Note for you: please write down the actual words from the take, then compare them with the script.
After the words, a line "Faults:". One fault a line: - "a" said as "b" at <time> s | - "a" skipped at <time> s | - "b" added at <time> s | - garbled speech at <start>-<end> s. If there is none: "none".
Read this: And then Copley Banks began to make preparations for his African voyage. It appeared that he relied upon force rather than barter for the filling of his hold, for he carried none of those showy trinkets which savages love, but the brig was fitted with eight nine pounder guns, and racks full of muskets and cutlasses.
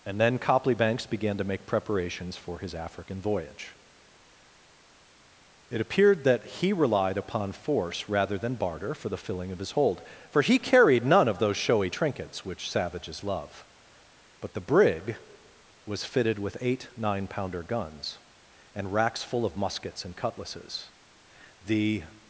And then Copley Banks began to make preparations for his African voyage. It appeared that he relied upon force rather than barter for the filling of his hold, for he carried none of those showy trinkets which savages love, but the brig was fitted with eight nine pounder guns, and racks full of muskets and cutlasses. The
Faults:
- "The" added at 21.6 s